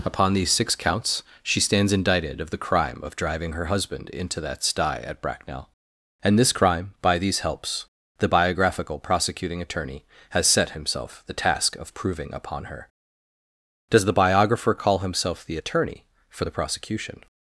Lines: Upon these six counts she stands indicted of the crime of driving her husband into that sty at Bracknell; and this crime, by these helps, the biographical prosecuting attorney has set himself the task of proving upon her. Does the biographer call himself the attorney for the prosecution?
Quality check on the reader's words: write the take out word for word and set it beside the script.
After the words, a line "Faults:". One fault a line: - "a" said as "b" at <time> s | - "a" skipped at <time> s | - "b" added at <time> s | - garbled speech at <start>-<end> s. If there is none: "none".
Upon these six counts she stands indicted of the crime of driving her husband into that sty at Bracknell; and this crime, by these helps, the biographical prosecuting attorney has set himself the task of proving upon her. Does the biographer call himself the attorney for the prosecution?
Faults:
none